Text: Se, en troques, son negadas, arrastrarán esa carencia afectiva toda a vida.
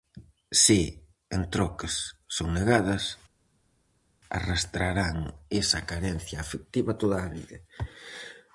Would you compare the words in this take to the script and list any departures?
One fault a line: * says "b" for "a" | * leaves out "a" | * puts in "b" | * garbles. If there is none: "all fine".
all fine